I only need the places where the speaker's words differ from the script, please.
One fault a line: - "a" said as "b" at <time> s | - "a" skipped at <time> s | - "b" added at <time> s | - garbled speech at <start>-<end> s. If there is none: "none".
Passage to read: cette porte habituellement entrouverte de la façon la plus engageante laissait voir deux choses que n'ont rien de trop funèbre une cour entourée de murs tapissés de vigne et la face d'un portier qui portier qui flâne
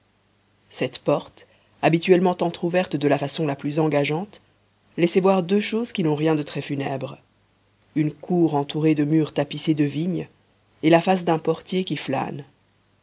- "que" said as "qui" at 5.9 s
- "trop" said as "très" at 6.4 s
- "portier qui" skipped at 12.0 s